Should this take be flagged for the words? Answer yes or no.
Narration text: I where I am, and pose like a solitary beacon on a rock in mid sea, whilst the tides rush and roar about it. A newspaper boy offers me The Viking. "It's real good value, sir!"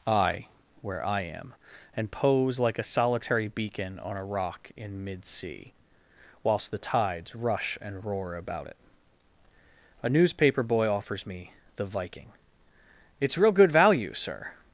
no